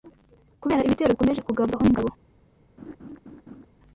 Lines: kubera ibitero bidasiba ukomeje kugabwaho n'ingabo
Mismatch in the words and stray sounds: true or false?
true